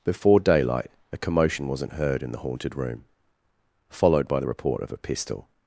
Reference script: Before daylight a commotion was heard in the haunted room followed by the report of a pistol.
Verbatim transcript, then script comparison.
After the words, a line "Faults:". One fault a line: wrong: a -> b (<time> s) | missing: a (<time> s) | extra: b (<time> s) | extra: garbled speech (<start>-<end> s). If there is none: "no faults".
Before daylight a commotion wasn't heard in the haunted room followed by the report of a pistol.
Faults:
wrong: was -> wasn't (1.7 s)